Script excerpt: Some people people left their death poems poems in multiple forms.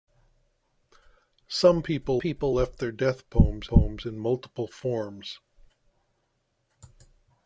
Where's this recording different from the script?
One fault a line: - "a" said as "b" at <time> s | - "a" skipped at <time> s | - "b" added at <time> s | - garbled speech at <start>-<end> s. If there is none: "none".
none